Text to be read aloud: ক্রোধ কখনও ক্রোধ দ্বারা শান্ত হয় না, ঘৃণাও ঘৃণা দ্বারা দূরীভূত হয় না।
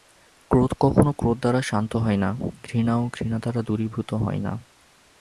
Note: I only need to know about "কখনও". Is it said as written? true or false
true